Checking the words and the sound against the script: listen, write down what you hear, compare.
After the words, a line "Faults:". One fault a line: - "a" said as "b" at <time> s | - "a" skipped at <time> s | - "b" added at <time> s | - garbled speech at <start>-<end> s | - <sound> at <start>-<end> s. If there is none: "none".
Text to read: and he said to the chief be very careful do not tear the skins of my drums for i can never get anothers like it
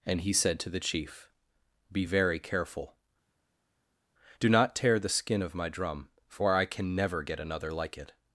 and he said to the chief be very careful do not tear the skin of my drum for i can never get another like it
Faults:
- "skins" said as "skin" at 5.1 s
- "drums" said as "drum" at 5.7 s
- "anothers" said as "another" at 7.4 s